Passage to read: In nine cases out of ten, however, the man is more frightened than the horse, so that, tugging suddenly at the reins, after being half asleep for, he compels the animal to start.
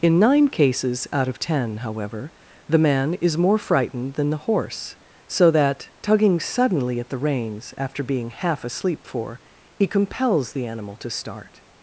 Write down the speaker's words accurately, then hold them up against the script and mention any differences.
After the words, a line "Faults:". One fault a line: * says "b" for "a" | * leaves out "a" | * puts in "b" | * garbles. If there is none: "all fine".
In nine cases out of ten, however, the man is more frightened than the horse, so that, tugging suddenly at the reins, after being half asleep for, he compels the animal to start.
Faults:
all fine